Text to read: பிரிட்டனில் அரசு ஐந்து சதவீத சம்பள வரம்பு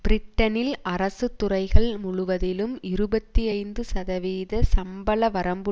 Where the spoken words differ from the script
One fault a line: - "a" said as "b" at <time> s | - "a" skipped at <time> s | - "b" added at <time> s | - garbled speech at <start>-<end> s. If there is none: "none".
- "துறைகள் முழுவதிலும் இருபத்தி" added at 1.4 s